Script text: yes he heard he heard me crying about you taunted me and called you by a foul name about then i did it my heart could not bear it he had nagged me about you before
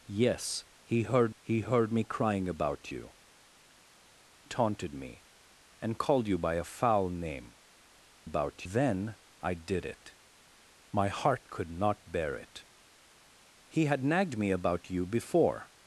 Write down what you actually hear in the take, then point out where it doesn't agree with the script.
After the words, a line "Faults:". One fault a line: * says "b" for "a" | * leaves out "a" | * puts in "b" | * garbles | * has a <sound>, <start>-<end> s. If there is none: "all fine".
yes he heard he heard me crying about you taunted me and called you by a foul name about then i did it my heart could not bear it he had nagged me about you before
Faults:
all fine